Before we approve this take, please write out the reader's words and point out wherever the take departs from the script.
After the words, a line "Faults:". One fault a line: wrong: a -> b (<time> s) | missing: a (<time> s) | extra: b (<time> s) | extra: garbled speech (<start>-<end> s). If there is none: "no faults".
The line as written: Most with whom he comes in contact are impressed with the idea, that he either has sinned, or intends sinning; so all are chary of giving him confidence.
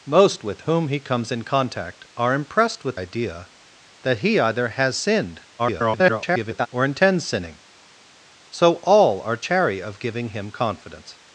Most with whom he comes in contact are impressed with idea, that he either has sinned, [garbled] or intends sinning; so all are chary of giving him confidence.
Faults:
missing: the (3.0 s)
extra: garbled speech (5.6-6.7 s)